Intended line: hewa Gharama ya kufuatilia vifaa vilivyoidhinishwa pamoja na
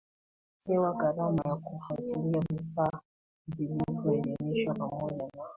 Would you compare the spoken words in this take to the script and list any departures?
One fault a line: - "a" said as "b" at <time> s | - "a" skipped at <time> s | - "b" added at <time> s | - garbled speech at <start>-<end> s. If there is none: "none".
none